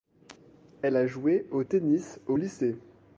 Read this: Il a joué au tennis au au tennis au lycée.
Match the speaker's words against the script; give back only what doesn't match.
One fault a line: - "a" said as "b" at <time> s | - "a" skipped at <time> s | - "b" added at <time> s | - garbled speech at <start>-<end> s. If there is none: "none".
- "Il" said as "Elle" at 0.8 s
- "au tennis au" skipped at 2.4 s